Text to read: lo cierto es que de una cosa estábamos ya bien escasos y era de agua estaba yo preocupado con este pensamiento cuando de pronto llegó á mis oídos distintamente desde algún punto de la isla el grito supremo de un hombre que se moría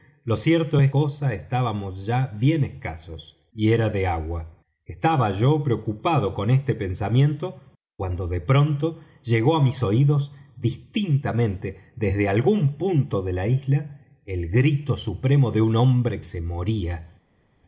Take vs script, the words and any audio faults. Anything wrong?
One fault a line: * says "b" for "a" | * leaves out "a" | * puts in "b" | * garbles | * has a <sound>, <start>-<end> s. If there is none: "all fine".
* leaves out "que de una"
* leaves out "que"